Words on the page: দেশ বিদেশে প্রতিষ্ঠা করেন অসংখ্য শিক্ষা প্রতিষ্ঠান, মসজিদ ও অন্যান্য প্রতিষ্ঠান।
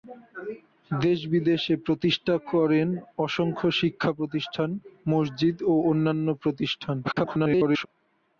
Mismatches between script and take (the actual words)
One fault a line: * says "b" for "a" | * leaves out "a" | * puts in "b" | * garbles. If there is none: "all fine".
* garbles